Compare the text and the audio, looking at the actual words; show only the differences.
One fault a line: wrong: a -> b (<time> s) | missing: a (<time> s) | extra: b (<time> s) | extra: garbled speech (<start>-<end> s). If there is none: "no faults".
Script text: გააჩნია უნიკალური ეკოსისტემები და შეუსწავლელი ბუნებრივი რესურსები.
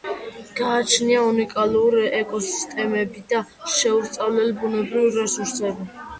no faults